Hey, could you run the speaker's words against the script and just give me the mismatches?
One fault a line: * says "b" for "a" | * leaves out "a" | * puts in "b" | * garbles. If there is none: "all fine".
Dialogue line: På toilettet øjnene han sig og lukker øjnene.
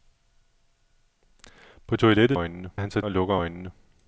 all fine